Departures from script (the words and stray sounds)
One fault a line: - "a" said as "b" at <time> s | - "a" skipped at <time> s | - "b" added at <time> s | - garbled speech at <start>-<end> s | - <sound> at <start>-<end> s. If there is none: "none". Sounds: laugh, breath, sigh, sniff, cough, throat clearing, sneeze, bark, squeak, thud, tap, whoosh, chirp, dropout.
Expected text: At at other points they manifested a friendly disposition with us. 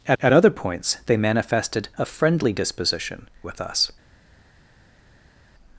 none